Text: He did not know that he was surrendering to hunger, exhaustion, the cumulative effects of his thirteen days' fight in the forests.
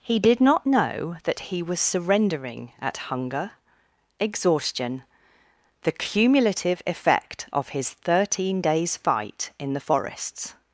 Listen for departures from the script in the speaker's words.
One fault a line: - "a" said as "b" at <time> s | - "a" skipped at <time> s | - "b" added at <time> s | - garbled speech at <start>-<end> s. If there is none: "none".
- "to" said as "at" at 2.8 s
- "effects" said as "effect" at 6.8 s